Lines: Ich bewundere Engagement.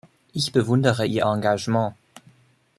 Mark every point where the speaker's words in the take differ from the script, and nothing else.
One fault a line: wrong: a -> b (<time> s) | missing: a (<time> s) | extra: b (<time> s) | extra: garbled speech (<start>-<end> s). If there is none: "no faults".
extra: Ihr (1.0 s)